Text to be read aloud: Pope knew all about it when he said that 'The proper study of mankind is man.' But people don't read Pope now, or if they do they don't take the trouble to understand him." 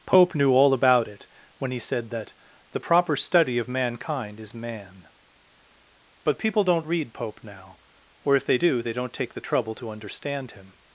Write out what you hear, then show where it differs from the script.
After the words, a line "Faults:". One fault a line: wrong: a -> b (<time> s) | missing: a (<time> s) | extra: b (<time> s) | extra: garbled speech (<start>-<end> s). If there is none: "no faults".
Pope knew all about it when he said that 'The proper study of mankind is man.' But people don't read Pope now, or if they do they don't take the trouble to understand him."
Faults:
no faults